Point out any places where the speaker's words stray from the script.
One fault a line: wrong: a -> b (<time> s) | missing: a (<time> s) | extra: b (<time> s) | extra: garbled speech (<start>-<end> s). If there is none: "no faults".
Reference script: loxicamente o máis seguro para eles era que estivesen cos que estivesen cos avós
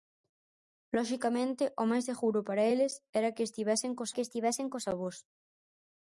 no faults